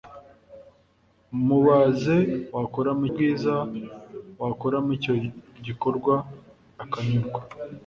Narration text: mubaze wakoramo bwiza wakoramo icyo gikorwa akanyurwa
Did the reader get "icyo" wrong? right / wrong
right